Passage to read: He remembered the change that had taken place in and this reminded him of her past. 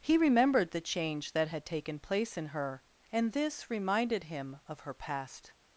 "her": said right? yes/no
yes